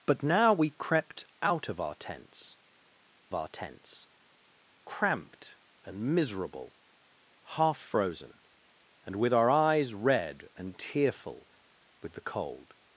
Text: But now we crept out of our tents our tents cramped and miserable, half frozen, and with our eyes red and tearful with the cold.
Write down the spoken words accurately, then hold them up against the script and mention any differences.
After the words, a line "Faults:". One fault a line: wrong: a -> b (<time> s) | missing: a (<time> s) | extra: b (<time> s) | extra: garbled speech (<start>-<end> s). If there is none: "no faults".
But now we crept out of our tents our tents cramped and miserable, half frozen, and with our eyes red and tearful with the cold.
Faults:
no faults